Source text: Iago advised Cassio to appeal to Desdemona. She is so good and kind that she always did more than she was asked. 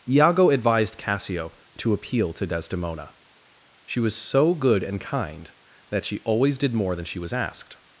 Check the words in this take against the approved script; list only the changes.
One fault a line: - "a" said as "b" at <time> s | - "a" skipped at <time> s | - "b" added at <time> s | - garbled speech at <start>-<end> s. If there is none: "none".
- "is" said as "was" at 4.0 s